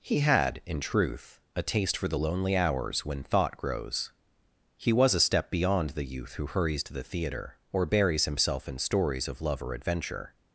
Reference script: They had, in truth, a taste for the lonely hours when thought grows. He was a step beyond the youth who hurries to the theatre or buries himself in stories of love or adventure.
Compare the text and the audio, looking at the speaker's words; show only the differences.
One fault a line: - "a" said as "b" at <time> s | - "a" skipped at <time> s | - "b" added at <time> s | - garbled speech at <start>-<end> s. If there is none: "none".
- "They" said as "He" at 0.0 s